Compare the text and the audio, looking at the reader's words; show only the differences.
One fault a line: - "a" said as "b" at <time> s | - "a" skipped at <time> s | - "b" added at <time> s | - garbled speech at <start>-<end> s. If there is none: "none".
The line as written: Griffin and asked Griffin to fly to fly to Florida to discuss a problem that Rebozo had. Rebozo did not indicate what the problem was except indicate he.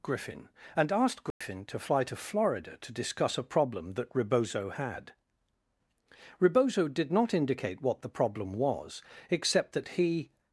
- "fly to" skipped at 2.1 s
- "indicate" said as "that" at 9.7 s